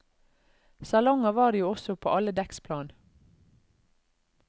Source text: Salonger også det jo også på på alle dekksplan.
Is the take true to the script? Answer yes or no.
no